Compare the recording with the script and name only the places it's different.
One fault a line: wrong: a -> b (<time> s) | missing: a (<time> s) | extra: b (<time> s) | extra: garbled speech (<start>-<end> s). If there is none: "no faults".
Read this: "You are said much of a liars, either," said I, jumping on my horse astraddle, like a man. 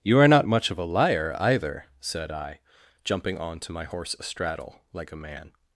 wrong: said -> not (0.3 s)
wrong: liars -> liar (0.8 s)
extra: to (3.6 s)